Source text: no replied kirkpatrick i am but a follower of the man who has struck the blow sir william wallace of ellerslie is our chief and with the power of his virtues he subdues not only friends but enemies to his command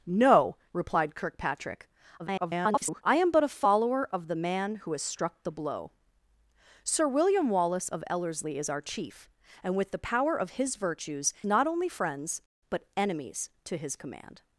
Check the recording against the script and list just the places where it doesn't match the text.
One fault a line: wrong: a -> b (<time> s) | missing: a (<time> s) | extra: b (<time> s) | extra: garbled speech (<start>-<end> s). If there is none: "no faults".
extra: garbled speech (2.2-3.0 s)
missing: he subdues (11.3 s)